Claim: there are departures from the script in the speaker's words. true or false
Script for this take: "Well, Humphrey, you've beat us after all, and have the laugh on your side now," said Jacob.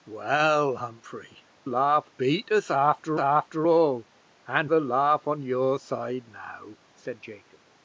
true